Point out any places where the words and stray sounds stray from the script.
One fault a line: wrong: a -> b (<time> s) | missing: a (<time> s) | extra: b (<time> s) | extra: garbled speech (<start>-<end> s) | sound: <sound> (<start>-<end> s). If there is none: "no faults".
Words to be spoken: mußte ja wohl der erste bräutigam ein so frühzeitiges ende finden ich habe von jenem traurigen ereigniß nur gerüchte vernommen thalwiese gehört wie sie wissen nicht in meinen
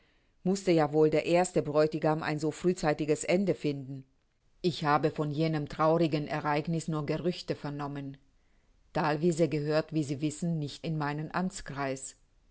no faults